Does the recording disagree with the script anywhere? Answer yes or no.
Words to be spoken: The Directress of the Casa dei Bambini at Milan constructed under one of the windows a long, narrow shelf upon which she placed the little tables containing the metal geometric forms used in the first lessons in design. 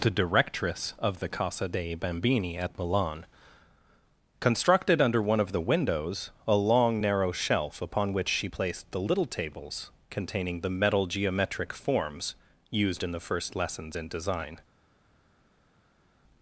no